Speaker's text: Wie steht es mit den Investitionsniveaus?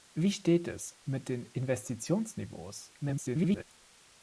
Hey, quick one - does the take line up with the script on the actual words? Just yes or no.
no